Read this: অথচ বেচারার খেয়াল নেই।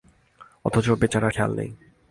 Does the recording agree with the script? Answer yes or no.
yes